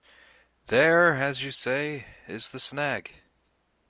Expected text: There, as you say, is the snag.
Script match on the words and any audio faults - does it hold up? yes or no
yes